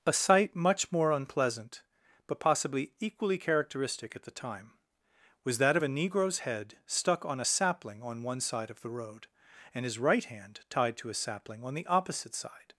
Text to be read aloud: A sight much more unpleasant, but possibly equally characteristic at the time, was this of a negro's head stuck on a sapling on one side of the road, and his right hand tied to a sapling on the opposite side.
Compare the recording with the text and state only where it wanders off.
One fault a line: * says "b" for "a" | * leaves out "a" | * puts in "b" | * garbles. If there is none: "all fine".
* says "that" for "this"